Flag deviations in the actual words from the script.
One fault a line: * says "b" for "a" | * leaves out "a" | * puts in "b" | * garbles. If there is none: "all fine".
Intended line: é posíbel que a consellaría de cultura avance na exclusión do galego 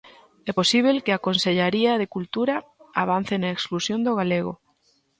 all fine